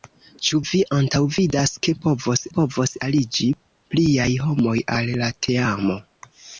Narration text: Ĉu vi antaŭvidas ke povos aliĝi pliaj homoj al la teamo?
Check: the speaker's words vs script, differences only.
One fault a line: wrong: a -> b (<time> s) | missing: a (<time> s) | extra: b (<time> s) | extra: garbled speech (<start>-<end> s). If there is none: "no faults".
extra: povos (2.6 s)